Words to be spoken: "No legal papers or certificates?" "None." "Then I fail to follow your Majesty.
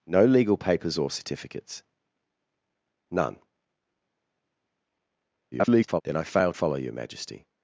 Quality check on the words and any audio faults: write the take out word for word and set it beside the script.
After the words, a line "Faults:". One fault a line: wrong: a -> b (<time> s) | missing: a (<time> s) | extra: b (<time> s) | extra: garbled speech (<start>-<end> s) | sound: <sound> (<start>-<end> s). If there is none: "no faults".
"No legal papers or certificates?" "None." [garbled] "Then I fail follow your Majesty.
Faults:
extra: garbled speech (5.5-6.0 s)
missing: to (6.5 s)